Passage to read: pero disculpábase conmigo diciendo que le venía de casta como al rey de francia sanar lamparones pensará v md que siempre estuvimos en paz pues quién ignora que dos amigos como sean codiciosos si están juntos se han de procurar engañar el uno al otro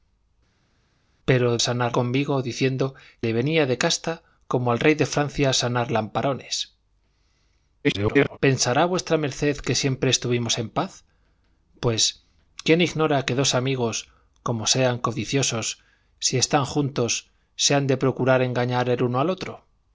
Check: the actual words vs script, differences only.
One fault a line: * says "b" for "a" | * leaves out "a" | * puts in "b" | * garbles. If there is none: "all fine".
* says "sanar" for "disculpábase"
* leaves out "que"
* garbles